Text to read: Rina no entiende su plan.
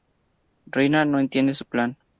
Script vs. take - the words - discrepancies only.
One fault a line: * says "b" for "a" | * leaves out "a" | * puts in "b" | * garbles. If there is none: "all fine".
all fine